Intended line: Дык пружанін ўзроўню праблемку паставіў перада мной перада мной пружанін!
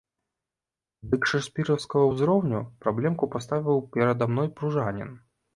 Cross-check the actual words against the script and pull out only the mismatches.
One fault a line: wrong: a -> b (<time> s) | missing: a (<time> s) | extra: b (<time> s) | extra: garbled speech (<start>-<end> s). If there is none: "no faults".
wrong: пружанін -> шэкспіраўскага (1.3 s)
missing: перада мной (4.5 s)